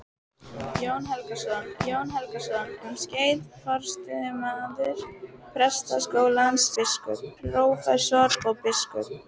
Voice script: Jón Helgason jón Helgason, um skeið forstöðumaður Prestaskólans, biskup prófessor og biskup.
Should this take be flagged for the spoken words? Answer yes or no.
no